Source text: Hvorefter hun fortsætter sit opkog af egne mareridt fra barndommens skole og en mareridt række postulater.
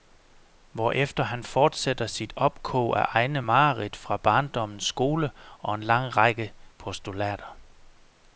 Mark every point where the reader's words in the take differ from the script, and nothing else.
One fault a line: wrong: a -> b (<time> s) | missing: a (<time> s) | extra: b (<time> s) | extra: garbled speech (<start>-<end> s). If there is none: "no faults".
wrong: hun -> han (1.2 s)
wrong: mareridt -> lang (5.8 s)